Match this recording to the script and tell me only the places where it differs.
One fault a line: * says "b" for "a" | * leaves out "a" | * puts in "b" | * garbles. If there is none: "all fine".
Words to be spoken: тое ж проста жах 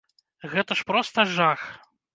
* says "гэта" for "тое"